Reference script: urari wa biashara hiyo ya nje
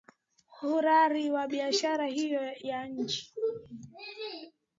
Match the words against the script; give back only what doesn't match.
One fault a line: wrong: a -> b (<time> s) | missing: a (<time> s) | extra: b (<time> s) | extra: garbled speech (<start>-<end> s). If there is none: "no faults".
no faults